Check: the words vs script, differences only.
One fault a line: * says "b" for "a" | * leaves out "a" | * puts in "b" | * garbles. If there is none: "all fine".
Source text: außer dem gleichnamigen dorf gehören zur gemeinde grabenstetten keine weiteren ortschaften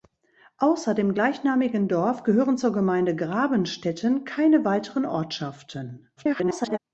* garbles